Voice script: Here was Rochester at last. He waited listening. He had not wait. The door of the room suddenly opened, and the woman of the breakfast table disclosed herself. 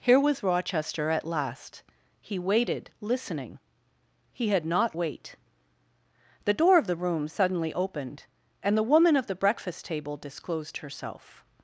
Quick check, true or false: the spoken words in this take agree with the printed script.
true